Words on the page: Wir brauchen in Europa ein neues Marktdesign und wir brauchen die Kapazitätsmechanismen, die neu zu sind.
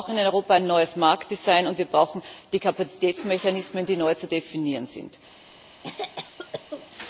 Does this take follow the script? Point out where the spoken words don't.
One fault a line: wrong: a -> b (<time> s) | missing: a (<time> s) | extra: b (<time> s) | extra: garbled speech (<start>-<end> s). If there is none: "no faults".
extra: definieren (4.3 s)